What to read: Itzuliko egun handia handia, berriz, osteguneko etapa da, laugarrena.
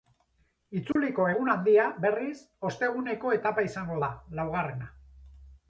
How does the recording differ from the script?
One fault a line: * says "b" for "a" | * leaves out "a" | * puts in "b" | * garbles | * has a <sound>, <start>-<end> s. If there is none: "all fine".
* has a dropout, 0.9-1.0 s
* leaves out "handia"
* puts in "izango"